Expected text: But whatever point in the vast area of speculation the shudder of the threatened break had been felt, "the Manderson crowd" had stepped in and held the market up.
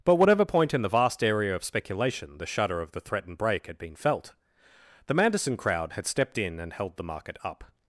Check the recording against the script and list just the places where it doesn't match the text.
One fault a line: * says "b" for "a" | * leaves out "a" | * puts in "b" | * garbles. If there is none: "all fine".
all fine